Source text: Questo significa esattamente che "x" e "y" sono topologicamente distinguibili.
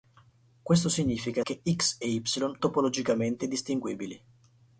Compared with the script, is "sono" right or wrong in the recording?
wrong